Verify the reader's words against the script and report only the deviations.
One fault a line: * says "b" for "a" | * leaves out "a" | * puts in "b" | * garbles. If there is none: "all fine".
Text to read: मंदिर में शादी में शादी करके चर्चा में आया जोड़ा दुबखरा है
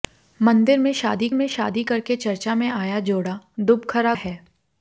all fine